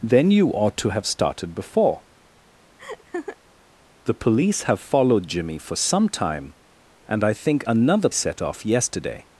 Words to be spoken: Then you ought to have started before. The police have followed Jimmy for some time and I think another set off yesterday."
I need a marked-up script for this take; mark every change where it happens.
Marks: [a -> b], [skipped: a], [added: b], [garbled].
Then you ought to have started before. The police have followed Jimmy for some time and I think another set off yesterday."